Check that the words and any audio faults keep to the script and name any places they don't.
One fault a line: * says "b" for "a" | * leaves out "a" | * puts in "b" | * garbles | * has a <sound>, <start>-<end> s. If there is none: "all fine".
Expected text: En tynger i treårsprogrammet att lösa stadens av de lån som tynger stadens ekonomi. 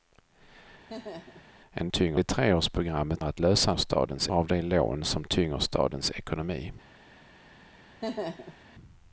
* has a laugh, 0.9-1.5 s
* has a laugh, 8.0-8.6 s